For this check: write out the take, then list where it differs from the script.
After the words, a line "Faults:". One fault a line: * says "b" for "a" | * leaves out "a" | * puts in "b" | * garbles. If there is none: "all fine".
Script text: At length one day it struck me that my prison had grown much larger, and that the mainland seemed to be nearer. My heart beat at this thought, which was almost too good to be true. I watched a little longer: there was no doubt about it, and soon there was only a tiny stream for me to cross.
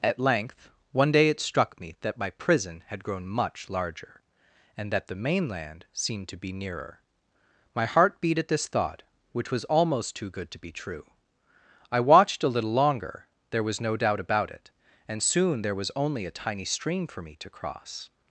At length one day it struck me that my prison had grown much larger, and that the mainland seemed to be nearer. My heart beat at this thought, which was almost too good to be true. I watched a little longer: there was no doubt about it, and soon there was only a tiny stream for me to cross.
Faults:
all fine